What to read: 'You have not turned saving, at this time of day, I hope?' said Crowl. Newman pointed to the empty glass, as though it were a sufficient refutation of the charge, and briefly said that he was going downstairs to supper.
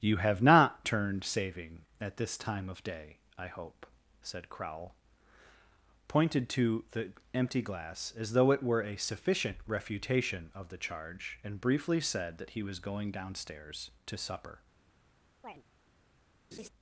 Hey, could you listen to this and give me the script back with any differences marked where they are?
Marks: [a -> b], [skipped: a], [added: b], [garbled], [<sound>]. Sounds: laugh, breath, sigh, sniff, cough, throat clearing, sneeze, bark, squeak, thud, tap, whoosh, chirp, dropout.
'You have not turned saving, at this time of day, I hope?' said Crowl. [skipped: Newman] pointed to the empty glass, as though it were a sufficient refutation of the charge, and briefly said that he was going downstairs to supper. [chirp] [laugh]